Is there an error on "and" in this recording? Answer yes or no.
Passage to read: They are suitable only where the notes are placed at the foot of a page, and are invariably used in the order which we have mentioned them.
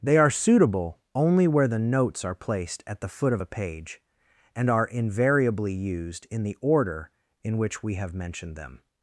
no